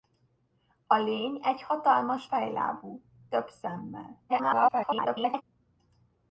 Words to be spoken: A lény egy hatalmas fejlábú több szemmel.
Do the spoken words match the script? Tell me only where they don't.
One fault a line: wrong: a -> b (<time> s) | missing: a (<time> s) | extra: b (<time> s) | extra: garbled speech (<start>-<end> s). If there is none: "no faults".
extra: garbled speech (4.3-5.4 s)